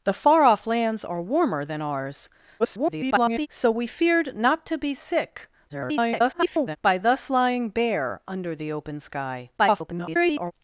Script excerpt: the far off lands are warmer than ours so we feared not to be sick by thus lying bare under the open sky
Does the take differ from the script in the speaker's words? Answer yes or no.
yes